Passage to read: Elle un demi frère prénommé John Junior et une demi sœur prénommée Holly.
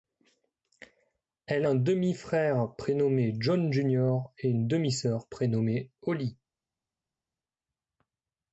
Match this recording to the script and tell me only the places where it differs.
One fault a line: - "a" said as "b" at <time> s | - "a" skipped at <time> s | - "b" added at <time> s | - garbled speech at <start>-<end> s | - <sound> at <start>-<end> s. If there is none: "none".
none